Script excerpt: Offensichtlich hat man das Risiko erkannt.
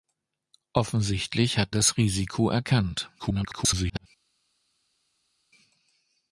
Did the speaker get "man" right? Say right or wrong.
wrong